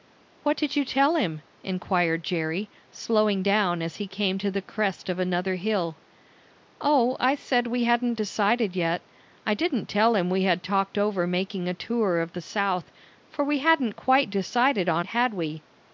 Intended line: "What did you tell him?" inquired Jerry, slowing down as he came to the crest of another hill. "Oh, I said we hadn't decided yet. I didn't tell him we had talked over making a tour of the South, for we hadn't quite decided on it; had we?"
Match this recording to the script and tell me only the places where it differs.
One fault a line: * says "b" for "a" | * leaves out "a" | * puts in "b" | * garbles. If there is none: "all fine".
* leaves out "it"